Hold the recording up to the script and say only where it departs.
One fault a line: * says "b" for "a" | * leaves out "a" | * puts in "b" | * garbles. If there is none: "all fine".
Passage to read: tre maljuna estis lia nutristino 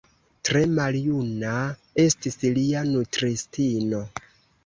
all fine